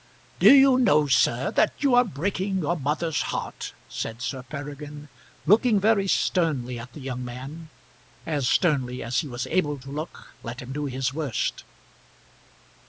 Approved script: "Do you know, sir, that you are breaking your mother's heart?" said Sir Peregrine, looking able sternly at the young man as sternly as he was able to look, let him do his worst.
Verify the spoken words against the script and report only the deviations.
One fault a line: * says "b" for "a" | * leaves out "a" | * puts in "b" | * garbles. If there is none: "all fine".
* says "very" for "able"